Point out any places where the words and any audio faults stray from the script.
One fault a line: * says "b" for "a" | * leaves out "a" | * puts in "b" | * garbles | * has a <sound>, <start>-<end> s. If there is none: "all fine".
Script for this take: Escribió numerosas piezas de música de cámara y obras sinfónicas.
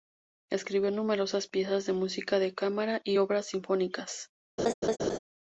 * has a laugh, 4.6-5.2 s